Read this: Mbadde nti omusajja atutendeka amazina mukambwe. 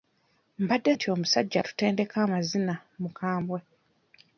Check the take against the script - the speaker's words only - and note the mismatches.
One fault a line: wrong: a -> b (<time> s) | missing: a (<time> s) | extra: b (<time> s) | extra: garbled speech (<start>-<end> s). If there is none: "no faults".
no faults